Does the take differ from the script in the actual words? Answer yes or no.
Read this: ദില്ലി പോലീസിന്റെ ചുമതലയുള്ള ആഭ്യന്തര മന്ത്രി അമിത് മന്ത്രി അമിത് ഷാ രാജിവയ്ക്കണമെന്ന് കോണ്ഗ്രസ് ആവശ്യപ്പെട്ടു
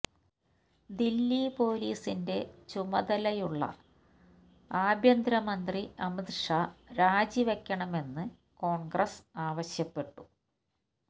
yes